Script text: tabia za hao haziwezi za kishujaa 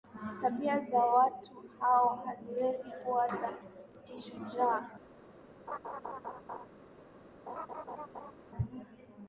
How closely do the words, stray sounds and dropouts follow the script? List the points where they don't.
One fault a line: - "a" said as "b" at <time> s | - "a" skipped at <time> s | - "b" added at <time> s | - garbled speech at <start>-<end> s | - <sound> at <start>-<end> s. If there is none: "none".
- "watu" added at 1.1 s
- "kuwa" added at 3.0 s
- laugh at 5.7-6.7 s
- laugh at 7.5-8.3 s